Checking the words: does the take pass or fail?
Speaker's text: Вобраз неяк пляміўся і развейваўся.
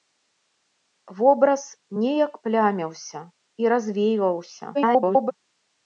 fail